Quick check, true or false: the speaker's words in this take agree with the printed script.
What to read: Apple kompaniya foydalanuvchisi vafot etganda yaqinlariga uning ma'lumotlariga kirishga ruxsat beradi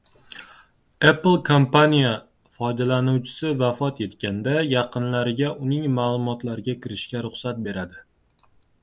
true